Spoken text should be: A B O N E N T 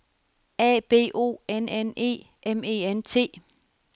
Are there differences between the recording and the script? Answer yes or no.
yes